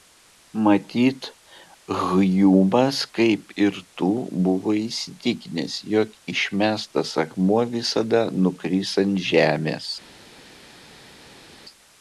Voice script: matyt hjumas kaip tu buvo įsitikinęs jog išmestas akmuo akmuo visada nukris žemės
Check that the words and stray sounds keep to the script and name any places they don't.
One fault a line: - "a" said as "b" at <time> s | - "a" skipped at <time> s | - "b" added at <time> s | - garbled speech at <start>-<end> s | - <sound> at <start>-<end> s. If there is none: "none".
- "ir" added at 3.6 s
- "akmuo" skipped at 7.6 s
- "ant" added at 9.0 s